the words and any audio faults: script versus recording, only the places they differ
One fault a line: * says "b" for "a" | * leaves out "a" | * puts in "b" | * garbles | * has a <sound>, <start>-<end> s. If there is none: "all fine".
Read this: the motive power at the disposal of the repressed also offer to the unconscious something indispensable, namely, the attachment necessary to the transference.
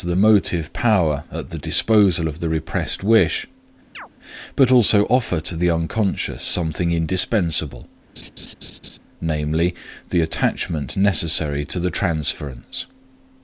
* puts in "wish but"
* has a chirp, 3.9-4.1 s
* has a laugh, 8.2-9.0 s